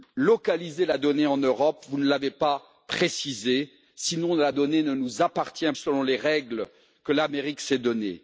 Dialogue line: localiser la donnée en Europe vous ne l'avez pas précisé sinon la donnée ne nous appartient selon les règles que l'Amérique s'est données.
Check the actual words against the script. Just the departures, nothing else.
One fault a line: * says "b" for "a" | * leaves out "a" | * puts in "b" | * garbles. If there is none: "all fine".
all fine